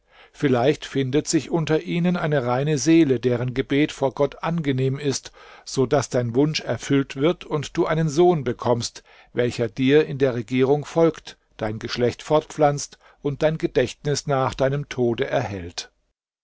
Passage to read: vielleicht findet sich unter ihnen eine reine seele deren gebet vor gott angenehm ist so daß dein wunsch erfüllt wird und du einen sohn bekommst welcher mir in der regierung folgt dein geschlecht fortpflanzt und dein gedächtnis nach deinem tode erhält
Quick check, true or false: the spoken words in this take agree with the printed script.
false